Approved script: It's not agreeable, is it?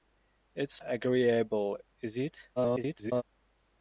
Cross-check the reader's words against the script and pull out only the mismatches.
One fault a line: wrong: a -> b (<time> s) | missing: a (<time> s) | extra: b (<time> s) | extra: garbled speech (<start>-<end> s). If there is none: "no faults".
missing: not (0.8 s)
extra: garbled speech (2.6-3.2 s)